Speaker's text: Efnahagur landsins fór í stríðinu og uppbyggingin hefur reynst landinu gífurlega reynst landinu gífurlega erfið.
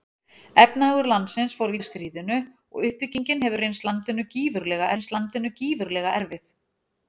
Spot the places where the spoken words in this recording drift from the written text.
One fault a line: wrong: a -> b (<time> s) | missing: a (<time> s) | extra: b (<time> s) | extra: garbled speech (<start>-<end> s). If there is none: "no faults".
no faults